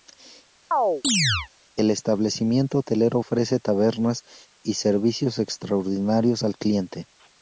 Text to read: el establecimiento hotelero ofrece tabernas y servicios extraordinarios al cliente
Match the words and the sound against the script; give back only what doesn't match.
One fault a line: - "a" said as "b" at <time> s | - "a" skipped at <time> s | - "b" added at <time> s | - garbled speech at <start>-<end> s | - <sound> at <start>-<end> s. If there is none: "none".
- chirp at 0.7-1.5 s